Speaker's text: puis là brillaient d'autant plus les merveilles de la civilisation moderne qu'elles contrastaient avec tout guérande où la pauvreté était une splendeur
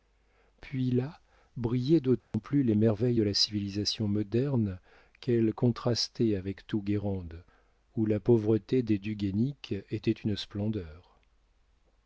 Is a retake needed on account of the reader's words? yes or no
yes